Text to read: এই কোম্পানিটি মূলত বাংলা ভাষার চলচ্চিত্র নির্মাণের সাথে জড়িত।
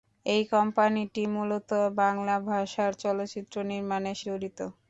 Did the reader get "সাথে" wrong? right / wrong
wrong